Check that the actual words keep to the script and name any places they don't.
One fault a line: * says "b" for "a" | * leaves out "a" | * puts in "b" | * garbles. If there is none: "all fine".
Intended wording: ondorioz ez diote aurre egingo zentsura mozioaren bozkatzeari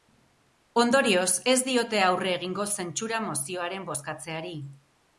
all fine